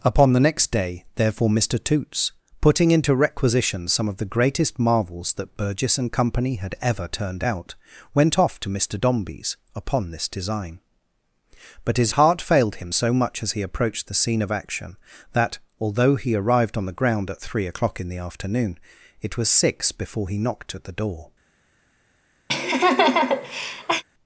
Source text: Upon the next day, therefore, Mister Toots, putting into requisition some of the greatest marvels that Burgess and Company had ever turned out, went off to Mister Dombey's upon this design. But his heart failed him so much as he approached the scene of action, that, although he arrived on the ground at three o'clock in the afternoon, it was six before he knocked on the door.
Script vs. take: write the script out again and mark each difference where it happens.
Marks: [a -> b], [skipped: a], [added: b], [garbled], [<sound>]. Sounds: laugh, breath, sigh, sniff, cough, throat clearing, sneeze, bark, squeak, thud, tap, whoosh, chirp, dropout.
Upon the next day, therefore, Mister Toots, putting into requisition some of the greatest marvels that Burgess and Company had ever turned out, went off to Mister Dombey's upon this design. But his heart failed him so much as he approached the scene of action, that, although he arrived on the ground at three o'clock in the afternoon, it was six before he knocked [on -> at] the door. [laugh]